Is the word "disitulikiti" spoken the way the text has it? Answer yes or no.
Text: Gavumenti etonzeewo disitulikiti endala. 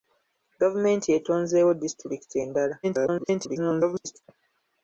yes